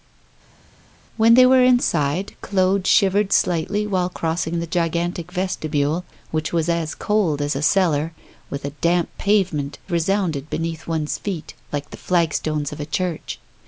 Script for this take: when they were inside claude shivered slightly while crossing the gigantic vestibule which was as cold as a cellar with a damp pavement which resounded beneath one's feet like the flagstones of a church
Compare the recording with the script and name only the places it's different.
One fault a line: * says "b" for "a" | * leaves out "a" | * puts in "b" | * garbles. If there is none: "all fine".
* leaves out "which"